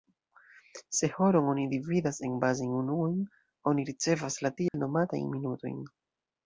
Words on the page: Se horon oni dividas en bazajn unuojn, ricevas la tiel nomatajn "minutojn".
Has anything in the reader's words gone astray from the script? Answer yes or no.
yes